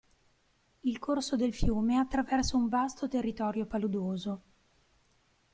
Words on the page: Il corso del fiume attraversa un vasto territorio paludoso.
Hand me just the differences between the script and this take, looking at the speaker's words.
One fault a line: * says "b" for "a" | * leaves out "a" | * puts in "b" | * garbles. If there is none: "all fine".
all fine